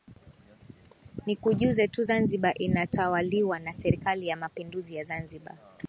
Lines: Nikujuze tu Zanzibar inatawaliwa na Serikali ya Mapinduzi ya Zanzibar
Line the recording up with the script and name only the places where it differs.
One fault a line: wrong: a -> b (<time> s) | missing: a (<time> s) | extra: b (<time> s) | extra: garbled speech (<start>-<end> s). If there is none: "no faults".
no faults